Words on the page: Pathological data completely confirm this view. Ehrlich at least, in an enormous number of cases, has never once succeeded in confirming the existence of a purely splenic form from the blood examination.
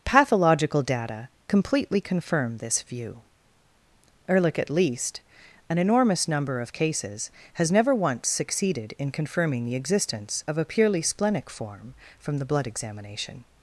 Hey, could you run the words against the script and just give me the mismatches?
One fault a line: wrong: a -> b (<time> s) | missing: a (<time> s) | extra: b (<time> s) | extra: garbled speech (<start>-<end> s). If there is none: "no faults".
missing: in (5.2 s)